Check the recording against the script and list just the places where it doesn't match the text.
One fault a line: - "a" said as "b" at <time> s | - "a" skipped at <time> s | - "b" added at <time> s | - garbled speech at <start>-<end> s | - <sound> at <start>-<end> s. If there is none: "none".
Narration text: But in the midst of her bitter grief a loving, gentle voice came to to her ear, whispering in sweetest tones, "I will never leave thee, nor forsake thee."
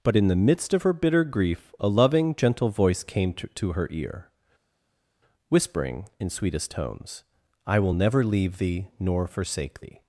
none